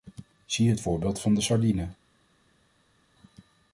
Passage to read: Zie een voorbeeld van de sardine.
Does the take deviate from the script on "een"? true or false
true